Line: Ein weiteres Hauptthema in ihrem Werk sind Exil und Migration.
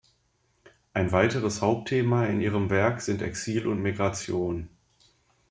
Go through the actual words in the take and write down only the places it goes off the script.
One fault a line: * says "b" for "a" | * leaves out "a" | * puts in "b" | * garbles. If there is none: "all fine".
all fine